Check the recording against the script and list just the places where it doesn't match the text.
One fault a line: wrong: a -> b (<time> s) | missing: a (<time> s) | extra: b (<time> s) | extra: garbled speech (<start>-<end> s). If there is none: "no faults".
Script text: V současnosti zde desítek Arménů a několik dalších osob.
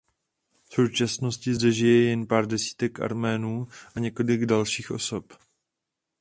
extra: žije jen pár (1.7 s)